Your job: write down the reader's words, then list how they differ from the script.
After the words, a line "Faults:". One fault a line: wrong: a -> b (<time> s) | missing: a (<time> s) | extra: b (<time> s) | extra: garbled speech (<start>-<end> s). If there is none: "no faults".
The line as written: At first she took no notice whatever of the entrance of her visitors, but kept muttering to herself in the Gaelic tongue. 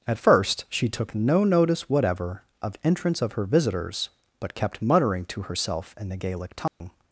At first she took no notice whatever of entrance of her visitors, but kept muttering to herself in the Gaelic tongue.
Faults:
missing: the (2.8 s)